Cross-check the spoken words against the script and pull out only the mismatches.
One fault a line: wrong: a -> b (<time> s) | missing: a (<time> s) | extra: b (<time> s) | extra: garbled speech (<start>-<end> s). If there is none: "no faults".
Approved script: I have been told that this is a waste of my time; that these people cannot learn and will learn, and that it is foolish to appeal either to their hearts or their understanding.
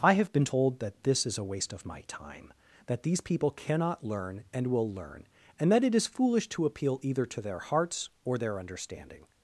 no faults